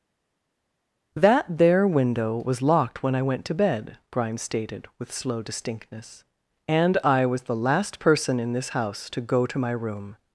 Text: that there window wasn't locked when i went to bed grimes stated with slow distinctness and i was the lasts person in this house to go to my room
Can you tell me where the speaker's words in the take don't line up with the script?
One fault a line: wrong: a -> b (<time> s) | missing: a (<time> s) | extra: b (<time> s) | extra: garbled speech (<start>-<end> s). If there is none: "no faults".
wrong: wasn't -> was (2.4 s)
wrong: lasts -> last (7.6 s)